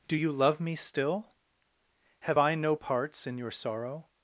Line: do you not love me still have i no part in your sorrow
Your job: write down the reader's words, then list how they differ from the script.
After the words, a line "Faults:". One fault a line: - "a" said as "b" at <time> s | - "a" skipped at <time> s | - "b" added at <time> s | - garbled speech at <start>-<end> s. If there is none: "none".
do you love me still have i no parts in your sorrow
Faults:
- "not" skipped at 0.3 s
- "part" said as "parts" at 2.7 s